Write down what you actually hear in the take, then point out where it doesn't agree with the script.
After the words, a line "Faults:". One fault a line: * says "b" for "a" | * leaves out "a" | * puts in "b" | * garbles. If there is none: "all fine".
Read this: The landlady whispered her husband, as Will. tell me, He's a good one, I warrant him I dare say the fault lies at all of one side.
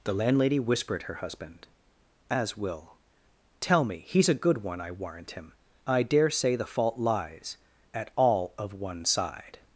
The landlady whispered her husband, as Will. tell me, He's a good one, I warrant him I dare say the fault lies at all of one side.
Faults:
all fine